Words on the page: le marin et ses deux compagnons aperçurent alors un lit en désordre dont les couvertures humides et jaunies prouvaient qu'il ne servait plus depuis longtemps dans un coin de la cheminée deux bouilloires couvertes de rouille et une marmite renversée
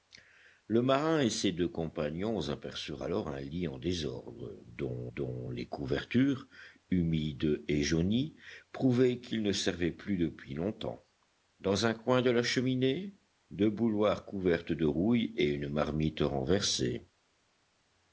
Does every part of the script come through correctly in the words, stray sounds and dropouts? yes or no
no